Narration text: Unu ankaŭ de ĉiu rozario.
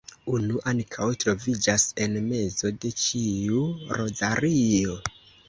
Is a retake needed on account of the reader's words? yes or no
yes